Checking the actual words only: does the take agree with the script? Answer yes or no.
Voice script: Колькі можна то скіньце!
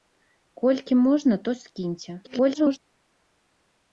no